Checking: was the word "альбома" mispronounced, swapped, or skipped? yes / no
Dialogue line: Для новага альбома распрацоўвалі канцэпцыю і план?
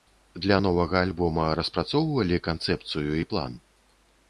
no